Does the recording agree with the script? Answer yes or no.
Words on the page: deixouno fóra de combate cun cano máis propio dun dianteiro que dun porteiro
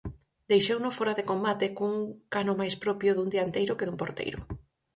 yes